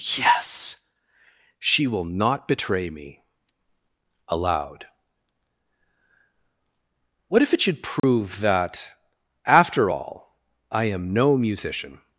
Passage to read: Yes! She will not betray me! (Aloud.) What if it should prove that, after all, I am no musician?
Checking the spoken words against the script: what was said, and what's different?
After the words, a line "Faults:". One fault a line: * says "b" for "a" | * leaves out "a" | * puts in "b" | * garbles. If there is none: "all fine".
Yes! She will not betray me! (Aloud.) What if it should prove that, after all, I am no musician?
Faults:
all fine